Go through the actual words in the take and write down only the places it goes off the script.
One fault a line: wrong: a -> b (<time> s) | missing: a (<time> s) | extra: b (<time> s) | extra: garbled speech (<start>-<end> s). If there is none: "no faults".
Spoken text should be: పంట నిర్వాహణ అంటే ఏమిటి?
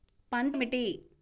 missing: నిర్వాహణ అంటే (0.6 s)